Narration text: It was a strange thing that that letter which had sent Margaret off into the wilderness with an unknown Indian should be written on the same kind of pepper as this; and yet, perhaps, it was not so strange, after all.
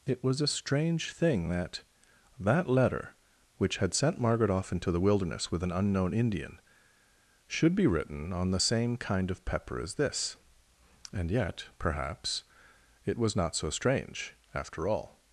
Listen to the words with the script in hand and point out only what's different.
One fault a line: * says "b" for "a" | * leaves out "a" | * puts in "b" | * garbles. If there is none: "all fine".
all fine